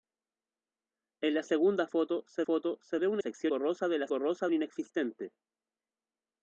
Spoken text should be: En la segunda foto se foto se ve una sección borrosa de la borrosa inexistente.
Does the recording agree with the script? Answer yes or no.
yes